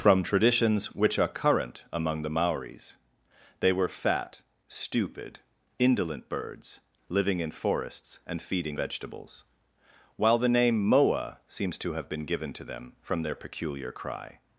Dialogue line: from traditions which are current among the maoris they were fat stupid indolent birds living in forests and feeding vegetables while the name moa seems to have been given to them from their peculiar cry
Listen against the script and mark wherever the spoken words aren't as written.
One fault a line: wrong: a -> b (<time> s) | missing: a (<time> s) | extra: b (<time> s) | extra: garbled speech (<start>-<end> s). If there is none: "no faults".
no faults